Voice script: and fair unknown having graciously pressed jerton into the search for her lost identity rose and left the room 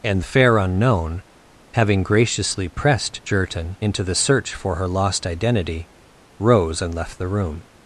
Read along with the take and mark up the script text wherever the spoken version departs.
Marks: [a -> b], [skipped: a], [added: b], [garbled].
and fair unknown having graciously pressed jerton into the search for her lost identity rose and left the room